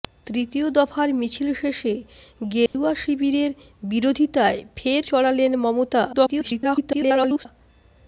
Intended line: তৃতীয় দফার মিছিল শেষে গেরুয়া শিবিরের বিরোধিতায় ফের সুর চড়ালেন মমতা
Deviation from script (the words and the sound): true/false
true